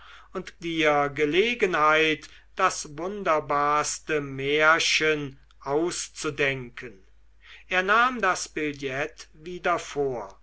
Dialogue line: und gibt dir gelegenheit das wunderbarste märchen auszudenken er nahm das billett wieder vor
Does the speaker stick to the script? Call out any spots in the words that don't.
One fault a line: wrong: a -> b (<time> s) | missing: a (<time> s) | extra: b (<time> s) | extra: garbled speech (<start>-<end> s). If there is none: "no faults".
missing: gibt (0.6 s)